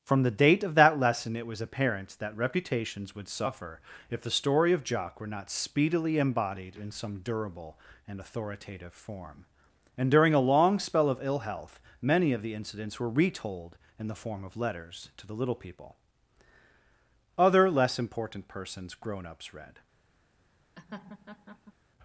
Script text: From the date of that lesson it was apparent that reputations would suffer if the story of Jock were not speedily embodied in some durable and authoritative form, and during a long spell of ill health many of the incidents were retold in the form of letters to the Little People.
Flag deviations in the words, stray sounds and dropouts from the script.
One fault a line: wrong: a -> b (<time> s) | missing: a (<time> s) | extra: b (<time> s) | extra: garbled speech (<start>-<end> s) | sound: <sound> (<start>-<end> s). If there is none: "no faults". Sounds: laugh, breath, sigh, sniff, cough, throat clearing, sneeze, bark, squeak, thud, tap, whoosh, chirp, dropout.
extra: Other Less Important Persons grown ups read (17.4 s)
sound: laugh (20.8-21.7 s)